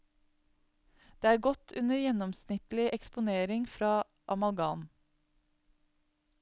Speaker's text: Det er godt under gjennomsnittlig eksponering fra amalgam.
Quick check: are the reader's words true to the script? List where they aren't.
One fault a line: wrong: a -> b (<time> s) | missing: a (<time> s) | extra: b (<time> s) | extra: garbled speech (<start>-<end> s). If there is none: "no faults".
no faults